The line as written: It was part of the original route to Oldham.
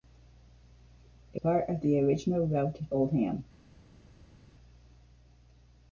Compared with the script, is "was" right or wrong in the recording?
wrong